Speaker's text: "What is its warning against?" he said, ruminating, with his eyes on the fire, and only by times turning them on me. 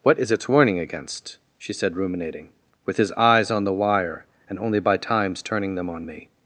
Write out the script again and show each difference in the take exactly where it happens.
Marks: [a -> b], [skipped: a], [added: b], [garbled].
"What is its warning against?" [he -> she] said, ruminating, with his eyes on the [fire, -> wire] and only by times turning them on me.